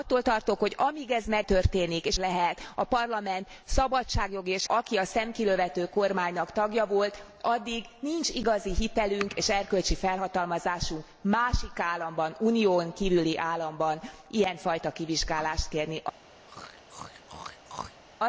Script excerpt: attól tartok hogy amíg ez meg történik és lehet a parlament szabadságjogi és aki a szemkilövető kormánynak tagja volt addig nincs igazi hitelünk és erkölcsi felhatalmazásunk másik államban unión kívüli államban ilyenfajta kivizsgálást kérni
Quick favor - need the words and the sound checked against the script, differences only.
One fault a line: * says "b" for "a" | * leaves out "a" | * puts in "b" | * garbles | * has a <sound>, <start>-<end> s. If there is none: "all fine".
* has a throat clearing, 16.5-18.0 s